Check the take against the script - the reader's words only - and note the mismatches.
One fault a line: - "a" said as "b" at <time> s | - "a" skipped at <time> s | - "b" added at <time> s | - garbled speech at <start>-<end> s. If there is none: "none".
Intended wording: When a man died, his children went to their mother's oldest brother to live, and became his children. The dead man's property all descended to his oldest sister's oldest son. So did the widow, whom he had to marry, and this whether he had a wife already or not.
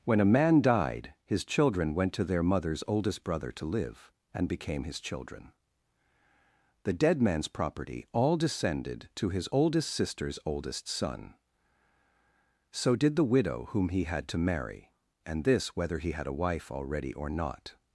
none